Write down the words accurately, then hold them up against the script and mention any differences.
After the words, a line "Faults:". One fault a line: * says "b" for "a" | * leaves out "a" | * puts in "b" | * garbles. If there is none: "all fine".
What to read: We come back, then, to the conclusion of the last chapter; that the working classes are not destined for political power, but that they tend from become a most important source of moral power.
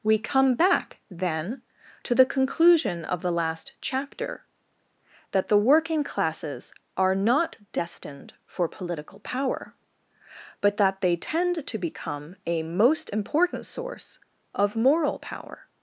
We come back, then, to the conclusion of the last chapter; that the working classes are not destined for political power, but that they tend to become a most important source of moral power.
Faults:
* says "to" for "from"